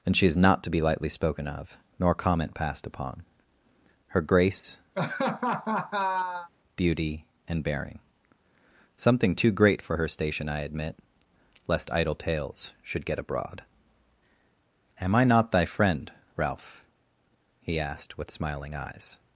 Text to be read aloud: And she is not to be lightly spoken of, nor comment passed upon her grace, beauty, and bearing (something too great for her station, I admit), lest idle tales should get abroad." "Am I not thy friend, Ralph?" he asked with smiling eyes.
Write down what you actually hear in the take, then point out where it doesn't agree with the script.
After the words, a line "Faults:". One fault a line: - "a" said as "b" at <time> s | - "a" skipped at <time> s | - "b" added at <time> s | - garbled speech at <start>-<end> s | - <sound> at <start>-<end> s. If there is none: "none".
And she is not to be lightly spoken of, nor comment passed upon her grace, beauty, and bearing (something too great for her station, I admit), lest idle tales should get abroad." "Am I not thy friend, Ralph?" he asked with smiling eyes.
Faults:
- laugh at 4.9-6.5 s